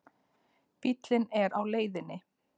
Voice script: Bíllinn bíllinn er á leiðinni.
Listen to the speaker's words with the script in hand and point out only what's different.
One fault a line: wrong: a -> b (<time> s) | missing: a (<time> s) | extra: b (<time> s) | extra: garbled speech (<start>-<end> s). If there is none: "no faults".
missing: bíllinn (1.3 s)